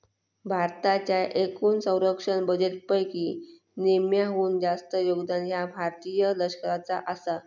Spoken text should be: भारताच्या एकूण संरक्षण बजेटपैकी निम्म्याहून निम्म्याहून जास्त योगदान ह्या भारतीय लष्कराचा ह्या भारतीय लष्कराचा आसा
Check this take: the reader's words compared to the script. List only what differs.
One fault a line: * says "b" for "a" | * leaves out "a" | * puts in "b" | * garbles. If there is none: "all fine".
* leaves out "निम्म्याहून"
* leaves out "ह्या भारतीय लष्कराचा"